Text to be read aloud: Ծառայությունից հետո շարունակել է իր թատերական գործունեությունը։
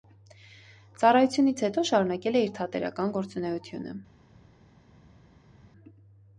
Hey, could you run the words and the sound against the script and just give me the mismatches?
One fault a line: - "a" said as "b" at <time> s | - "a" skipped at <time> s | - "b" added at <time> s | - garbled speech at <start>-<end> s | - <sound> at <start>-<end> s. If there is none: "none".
none